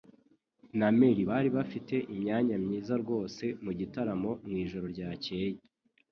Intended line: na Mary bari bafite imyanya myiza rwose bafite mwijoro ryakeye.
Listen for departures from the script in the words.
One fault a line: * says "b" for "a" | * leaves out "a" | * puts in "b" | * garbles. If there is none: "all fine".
* says "mugitaramo" for "bafite"